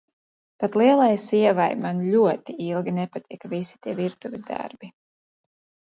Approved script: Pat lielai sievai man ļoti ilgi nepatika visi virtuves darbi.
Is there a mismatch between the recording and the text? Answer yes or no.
yes